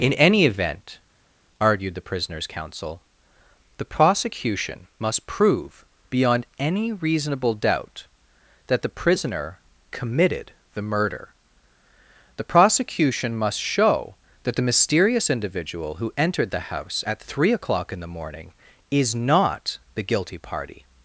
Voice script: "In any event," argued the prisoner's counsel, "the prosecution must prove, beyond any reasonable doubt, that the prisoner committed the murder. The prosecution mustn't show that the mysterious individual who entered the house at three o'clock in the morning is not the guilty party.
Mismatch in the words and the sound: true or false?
true